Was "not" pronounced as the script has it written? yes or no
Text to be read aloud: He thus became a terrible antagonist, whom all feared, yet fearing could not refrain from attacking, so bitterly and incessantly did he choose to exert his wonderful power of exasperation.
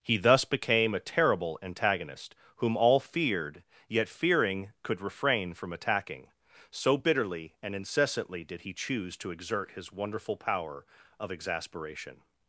no